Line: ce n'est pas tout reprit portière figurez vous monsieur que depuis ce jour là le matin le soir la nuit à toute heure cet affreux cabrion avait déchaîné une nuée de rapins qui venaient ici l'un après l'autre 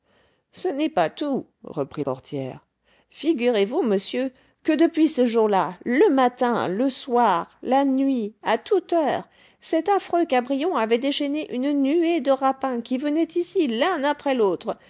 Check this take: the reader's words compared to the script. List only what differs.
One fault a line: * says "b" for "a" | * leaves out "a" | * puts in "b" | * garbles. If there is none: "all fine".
all fine